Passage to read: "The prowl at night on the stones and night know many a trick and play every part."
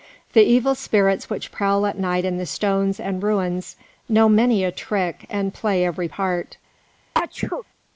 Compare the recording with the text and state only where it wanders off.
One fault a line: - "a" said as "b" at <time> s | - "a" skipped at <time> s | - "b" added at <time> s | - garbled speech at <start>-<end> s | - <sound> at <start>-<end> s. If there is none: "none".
- "evil spirits which" added at 0.4 s
- "on" said as "in" at 2.2 s
- "night" said as "ruins" at 3.2 s
- sneeze at 7.1-7.6 s